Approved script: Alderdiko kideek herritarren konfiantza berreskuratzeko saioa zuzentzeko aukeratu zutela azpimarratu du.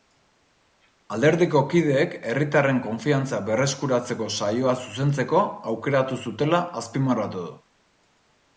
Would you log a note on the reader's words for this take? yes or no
no